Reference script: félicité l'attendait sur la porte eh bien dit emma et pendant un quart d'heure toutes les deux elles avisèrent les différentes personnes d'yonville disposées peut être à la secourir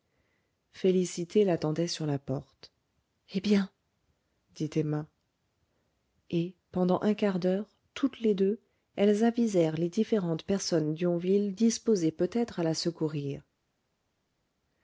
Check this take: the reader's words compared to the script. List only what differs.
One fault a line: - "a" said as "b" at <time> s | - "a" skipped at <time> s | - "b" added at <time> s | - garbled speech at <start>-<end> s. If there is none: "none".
none